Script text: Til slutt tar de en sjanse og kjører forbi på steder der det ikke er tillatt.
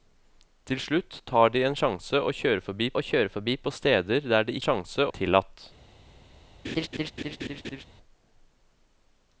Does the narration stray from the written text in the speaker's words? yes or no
yes